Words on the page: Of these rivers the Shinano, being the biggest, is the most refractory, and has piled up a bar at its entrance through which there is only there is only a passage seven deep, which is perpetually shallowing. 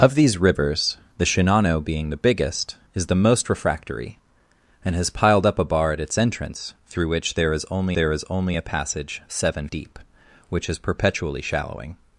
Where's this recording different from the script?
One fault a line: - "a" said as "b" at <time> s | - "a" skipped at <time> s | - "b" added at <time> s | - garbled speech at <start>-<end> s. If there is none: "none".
none